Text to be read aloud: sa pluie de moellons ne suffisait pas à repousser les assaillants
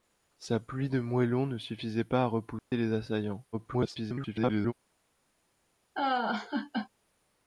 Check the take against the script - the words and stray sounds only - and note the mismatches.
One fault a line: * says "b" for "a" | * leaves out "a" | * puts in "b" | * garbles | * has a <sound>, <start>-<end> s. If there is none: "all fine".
* has a dropout, 2.6-2.7 s
* garbles
* has a laugh, 6.0-6.9 s